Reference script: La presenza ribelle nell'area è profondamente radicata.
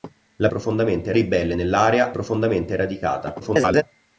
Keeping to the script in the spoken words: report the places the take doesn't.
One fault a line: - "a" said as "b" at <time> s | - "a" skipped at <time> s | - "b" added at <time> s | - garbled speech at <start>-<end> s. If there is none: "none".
- "presenza" said as "profondamente" at 0.5 s
- "è" skipped at 2.1 s
- garbled speech at 3.4-3.8 s